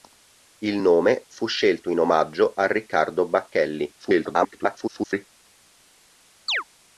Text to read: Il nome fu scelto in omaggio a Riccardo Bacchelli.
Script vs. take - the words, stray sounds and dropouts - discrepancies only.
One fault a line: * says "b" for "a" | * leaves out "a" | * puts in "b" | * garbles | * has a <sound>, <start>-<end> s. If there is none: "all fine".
* garbles
* has a chirp, 6.5-6.6 s